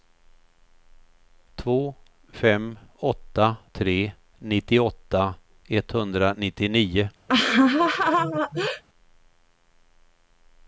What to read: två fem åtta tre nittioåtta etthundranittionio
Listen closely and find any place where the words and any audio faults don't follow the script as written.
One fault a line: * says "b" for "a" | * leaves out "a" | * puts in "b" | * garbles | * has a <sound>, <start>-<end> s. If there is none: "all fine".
* has a laugh, 7.3-8.8 s